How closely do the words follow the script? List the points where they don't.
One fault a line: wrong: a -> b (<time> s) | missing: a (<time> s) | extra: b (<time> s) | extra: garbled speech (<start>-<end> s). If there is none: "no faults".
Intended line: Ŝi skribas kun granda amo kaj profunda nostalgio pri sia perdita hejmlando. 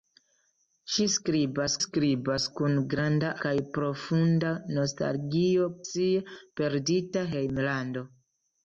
extra: skribas (1.8 s)
missing: amo (3.3 s)
missing: pri (5.7 s)